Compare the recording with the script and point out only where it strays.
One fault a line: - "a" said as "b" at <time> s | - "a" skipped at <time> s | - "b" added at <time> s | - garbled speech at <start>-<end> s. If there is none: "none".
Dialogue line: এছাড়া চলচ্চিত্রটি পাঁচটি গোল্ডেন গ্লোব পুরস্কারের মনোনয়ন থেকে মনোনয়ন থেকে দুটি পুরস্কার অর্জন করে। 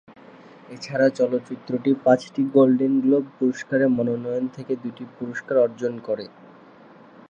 - "মনোনয়ন থেকে" skipped at 4.7 s